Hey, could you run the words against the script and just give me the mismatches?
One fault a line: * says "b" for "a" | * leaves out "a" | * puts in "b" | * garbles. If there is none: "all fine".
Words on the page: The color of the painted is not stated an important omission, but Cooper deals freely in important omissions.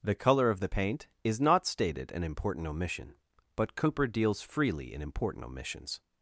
* says "paint" for "painted"